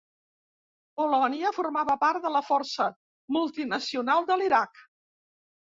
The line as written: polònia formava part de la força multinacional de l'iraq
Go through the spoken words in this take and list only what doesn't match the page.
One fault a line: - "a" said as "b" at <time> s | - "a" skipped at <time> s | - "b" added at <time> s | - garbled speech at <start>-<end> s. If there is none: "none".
none